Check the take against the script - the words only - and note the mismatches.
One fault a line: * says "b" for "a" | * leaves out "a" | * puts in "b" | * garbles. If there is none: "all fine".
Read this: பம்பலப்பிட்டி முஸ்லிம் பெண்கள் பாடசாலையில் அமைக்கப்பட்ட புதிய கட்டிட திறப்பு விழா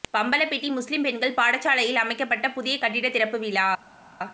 all fine